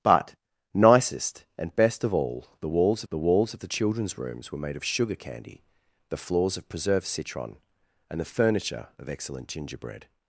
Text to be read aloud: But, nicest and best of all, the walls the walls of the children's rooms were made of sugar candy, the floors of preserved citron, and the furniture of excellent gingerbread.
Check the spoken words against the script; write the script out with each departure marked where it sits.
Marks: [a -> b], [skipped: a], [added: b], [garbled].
But, nicest and best of all, the walls the walls of the children's rooms were made of sugar candy, the floors of preserved citron, and the furniture of excellent gingerbread.